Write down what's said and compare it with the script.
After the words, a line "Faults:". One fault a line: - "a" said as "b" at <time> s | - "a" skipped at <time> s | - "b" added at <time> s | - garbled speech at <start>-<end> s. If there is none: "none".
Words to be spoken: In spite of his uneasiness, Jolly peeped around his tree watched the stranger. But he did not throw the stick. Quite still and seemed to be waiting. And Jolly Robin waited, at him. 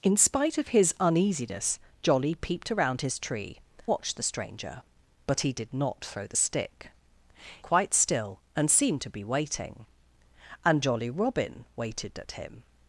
In spite of his uneasiness, Jolly peeped around his tree watched the stranger. But he did not throw the stick. Quite still and seemed to be waiting. And Jolly Robin waited, at him.
Faults:
none